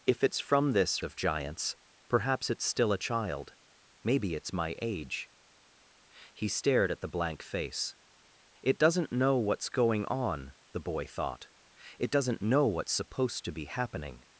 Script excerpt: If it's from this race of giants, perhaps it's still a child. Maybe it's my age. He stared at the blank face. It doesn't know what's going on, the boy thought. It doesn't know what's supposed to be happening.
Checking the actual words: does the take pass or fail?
fail